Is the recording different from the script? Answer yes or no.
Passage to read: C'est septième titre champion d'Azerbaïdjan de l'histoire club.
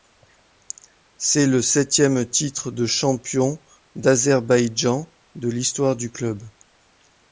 yes